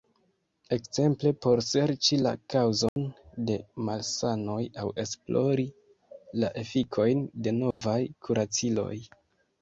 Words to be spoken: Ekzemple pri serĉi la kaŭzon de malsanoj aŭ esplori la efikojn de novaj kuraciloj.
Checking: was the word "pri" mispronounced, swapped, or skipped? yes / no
yes